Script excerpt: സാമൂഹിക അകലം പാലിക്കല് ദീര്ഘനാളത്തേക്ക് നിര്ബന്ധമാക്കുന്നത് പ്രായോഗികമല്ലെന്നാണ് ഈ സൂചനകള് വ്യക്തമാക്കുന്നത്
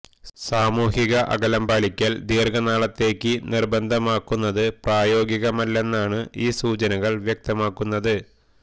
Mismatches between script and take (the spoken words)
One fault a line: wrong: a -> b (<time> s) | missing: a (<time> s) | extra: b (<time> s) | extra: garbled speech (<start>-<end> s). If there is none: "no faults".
no faults